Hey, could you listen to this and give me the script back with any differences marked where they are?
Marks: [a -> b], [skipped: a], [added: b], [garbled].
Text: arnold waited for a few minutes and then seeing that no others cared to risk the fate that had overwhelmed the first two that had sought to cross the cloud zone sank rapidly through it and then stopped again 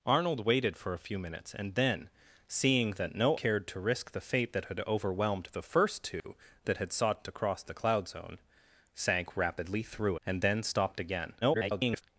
arnold waited for a few minutes and then seeing that no [skipped: others] cared to risk the fate that had overwhelmed the first two that had sought to cross the cloud zone sank rapidly through [skipped: it] and then stopped again [garbled]